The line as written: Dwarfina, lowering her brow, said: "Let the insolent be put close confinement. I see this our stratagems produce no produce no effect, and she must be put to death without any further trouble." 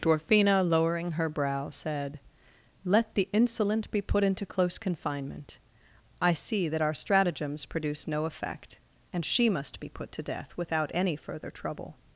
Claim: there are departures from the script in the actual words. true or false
true